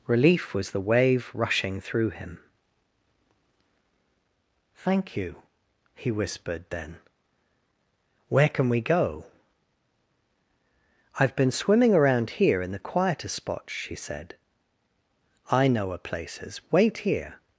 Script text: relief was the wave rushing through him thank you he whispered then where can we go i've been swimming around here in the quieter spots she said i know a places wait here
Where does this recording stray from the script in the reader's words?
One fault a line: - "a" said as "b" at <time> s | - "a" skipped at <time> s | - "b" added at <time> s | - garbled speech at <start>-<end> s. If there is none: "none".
none